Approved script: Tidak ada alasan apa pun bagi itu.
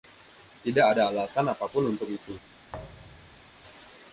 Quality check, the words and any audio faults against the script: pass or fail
fail